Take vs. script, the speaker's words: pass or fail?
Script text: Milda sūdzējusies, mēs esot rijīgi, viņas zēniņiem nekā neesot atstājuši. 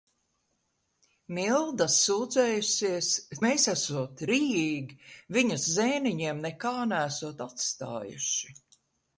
pass